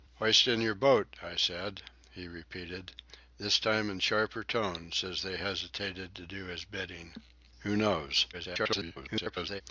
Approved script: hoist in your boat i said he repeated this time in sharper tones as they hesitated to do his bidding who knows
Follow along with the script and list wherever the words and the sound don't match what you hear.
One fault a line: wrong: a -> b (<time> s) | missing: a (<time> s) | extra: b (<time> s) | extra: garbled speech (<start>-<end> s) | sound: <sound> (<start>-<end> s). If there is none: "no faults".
extra: garbled speech (8.3-9.6 s)